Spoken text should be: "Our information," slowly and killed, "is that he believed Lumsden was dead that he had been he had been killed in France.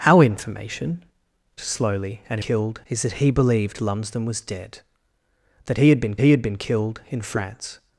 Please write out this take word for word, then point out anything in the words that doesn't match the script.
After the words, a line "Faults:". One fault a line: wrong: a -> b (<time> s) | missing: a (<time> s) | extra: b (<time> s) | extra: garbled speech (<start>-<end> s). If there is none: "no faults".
"Our information," slowly and killed, "is that he believed Lumsden was dead that he had been he had been killed in France.
Faults:
no faults